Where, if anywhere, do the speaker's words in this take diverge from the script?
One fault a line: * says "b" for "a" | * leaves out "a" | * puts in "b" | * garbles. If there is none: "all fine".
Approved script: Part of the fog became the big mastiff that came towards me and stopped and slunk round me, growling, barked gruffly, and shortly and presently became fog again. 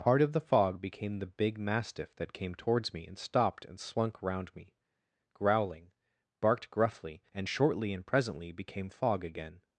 all fine